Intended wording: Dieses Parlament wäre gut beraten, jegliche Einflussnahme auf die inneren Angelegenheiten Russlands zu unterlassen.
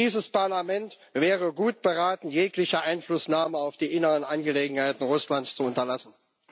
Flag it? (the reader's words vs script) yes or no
no